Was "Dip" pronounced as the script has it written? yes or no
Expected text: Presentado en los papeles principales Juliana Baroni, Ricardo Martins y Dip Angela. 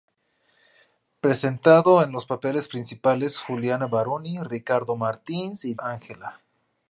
no